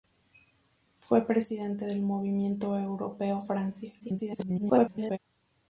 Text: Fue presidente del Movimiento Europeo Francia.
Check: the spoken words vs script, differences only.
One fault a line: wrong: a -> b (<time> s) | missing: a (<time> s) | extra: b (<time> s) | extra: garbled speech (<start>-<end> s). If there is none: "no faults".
extra: garbled speech (4.0-5.2 s)